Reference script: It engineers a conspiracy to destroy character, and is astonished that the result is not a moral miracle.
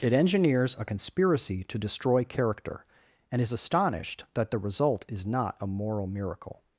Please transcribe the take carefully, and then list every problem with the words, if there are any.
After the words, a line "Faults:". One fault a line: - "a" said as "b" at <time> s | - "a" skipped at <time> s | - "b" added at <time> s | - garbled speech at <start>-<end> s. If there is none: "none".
It engineers a conspiracy to destroy character, and is astonished that the result is not a moral miracle.
Faults:
none